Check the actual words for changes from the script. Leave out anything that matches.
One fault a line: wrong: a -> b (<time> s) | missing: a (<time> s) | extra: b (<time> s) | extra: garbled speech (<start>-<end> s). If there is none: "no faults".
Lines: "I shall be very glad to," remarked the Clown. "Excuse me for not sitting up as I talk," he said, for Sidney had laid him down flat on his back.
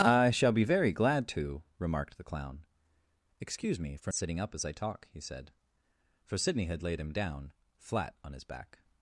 missing: not (4.1 s)